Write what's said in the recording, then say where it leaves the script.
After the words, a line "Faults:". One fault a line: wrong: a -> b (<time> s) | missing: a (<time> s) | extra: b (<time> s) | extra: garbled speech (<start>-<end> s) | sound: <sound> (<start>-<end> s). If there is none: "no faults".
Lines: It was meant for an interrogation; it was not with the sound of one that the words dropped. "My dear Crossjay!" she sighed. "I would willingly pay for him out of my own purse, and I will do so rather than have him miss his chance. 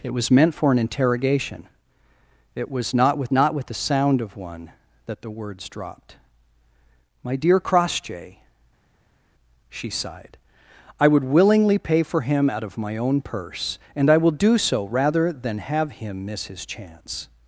It was meant for an interrogation; it was not with not with the sound of one that the words dropped. "My dear Crossjay!" she sighed. "I would willingly pay for him out of my own purse, and I will do so rather than have him miss his chance.
Faults:
extra: not with (3.3 s)